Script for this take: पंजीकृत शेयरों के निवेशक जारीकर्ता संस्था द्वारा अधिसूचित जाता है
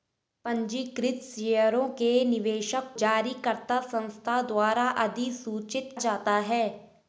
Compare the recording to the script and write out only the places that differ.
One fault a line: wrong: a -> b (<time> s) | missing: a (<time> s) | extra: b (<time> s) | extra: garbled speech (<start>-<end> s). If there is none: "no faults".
no faults